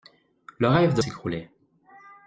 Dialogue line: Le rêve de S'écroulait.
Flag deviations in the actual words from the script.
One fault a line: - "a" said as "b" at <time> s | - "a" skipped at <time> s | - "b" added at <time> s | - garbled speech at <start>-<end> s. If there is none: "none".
none